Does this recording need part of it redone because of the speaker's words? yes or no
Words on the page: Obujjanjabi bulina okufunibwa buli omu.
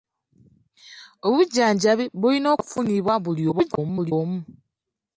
yes